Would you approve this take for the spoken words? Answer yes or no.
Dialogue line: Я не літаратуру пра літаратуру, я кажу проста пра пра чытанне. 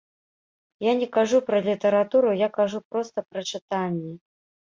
no